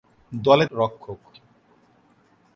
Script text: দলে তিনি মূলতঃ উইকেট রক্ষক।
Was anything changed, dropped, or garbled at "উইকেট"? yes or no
yes